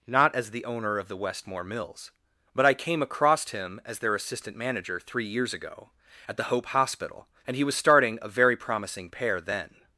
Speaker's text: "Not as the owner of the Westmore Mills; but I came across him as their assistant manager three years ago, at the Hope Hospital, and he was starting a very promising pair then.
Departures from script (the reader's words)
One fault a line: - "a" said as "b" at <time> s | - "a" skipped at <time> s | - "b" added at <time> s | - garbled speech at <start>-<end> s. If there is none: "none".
none